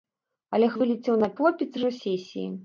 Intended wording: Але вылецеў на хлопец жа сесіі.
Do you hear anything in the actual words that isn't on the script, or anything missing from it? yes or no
no